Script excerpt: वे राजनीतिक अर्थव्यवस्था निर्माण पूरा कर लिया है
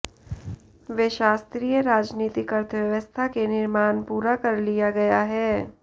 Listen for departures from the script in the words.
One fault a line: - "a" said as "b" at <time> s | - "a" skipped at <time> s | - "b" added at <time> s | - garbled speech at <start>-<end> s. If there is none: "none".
- "शास्त्रीय" added at 1.1 s
- "के" added at 3.3 s
- "गया" added at 4.9 s